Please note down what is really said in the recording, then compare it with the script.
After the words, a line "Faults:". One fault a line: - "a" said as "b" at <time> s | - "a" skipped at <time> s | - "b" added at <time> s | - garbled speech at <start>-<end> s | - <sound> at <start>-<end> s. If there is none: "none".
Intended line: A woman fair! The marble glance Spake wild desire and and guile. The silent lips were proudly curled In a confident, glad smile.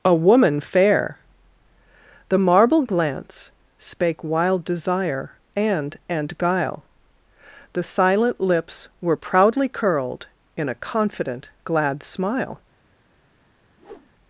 A woman fair! The marble glance Spake wild desire and and guile. The silent lips were proudly curled In a confident, glad smile.
Faults:
- whoosh at 13.8-14.1 s